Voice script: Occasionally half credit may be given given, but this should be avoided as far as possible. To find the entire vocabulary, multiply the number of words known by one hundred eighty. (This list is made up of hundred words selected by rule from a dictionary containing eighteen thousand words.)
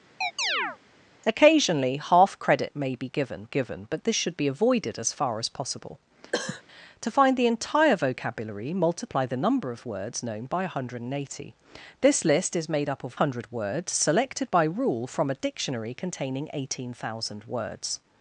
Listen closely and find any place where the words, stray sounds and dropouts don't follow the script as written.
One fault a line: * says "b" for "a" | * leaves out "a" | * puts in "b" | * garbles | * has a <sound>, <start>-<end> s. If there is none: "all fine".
* has a chirp, 0.2-0.8 s
* has a cough, 6.3-6.6 s